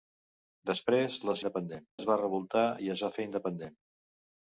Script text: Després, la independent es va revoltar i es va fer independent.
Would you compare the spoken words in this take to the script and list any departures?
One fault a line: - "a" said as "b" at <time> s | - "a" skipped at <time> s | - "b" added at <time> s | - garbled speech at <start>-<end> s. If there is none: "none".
none